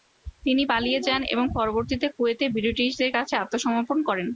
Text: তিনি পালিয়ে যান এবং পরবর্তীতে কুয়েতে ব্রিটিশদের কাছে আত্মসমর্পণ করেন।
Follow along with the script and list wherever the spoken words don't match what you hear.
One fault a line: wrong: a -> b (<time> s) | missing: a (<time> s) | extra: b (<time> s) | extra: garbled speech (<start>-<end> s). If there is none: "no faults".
no faults